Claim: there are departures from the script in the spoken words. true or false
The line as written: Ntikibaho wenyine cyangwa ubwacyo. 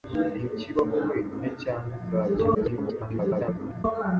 true